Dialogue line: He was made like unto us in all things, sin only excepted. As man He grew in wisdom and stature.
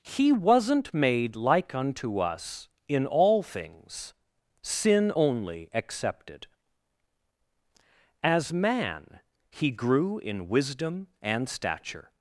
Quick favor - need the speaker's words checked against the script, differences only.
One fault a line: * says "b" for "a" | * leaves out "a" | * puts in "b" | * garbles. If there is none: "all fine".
* says "wasn't" for "was"